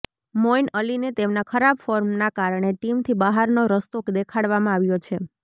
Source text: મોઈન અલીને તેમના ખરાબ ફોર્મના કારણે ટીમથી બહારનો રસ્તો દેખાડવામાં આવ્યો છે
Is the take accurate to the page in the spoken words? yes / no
yes